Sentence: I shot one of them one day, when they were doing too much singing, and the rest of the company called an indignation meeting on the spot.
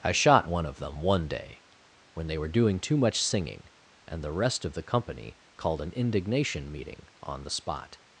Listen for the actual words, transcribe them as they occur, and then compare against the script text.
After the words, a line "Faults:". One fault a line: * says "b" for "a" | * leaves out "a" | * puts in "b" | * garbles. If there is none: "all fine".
I shot one of them one day, when they were doing too much singing, and the rest of the company called an indignation meeting on the spot.
Faults:
all fine